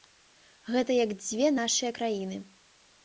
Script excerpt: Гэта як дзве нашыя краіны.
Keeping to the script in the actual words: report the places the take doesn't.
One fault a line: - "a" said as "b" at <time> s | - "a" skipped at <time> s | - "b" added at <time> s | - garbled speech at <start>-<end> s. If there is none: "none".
none